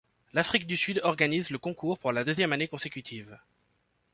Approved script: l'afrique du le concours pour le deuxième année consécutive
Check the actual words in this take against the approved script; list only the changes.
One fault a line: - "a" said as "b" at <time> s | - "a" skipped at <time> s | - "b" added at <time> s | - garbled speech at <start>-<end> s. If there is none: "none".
- "sud organise" added at 0.8 s
- "le" said as "la" at 2.1 s